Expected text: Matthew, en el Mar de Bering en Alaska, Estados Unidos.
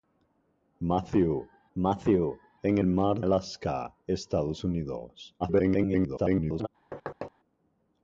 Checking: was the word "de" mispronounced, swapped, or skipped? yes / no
yes